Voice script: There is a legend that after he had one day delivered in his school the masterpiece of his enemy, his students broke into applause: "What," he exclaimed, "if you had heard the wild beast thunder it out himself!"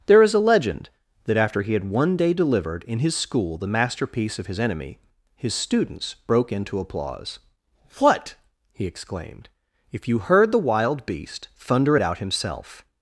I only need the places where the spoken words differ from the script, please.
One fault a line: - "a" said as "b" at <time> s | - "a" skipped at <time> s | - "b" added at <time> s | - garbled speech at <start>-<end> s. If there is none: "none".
- "had" skipped at 10.2 s